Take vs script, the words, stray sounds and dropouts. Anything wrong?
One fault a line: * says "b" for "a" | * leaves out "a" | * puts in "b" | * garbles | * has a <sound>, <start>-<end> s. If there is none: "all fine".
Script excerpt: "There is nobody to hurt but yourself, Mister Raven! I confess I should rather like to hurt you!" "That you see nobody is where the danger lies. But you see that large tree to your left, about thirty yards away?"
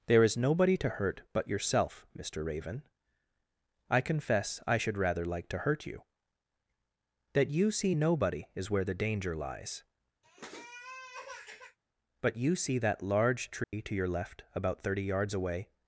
* has a sniff, 10.2-11.8 s
* has a dropout, 13.6-13.7 s